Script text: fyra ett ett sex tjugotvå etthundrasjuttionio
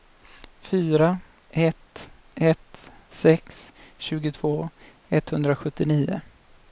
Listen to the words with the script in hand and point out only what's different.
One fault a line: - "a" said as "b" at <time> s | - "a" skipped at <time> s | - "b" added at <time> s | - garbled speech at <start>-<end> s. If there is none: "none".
none